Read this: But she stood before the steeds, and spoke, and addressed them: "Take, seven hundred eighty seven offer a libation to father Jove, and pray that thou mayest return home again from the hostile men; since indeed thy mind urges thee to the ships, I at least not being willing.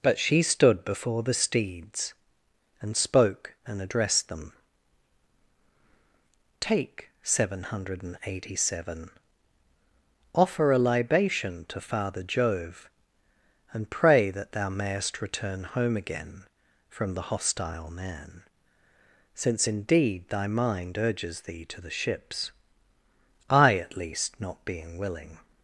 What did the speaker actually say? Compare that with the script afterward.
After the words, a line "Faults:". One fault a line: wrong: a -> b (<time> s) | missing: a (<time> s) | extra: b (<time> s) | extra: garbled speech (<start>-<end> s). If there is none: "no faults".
But she stood before the steeds, and spoke, and addressed them: "Take, seven hundred eighty seven offer a libation to father Jove, and pray that thou mayest return home again from the hostile man; since indeed thy mind urges thee to the ships, I at least not being willing.
Faults:
wrong: men -> man (17.9 s)